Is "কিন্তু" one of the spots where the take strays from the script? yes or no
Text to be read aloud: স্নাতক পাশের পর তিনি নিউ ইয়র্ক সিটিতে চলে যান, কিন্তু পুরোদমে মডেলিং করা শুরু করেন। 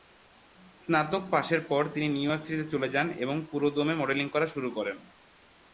yes